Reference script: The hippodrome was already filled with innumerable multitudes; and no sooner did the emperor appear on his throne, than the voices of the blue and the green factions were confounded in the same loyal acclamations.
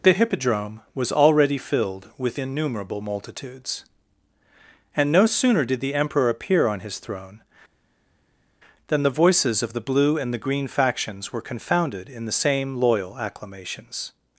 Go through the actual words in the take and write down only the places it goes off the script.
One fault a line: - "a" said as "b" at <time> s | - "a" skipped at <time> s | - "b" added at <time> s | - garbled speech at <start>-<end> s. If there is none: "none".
none